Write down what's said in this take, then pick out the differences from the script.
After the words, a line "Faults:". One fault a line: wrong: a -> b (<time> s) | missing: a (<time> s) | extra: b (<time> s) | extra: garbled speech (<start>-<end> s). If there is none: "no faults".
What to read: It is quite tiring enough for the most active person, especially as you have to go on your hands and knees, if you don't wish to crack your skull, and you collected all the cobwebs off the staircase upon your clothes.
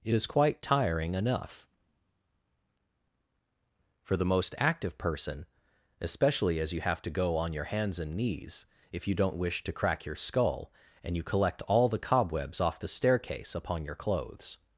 It is quite tiring enough for the most active person, especially as you have to go on your hands and knees, if you don't wish to crack your skull, and you collect all the cobwebs off the staircase upon your clothes.
Faults:
wrong: collected -> collect (11.2 s)